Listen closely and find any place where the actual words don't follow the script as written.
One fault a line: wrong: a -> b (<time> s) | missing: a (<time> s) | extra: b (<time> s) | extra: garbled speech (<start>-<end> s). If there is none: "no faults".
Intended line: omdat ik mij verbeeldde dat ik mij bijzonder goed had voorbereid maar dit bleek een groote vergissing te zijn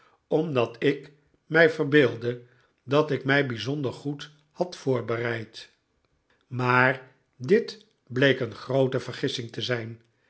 no faults